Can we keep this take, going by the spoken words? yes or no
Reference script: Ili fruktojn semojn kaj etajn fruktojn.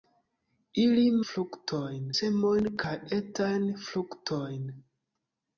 yes